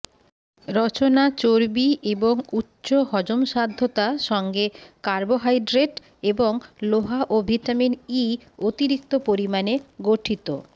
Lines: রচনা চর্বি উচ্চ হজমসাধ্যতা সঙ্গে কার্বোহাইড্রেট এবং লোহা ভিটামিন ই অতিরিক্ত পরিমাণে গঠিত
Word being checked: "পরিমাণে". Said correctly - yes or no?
yes